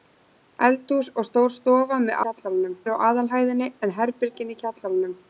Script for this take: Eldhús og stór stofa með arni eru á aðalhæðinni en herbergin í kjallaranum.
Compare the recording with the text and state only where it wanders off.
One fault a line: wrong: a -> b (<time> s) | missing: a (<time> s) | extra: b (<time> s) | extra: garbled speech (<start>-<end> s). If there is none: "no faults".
wrong: arni -> kjallaranum (2.2 s)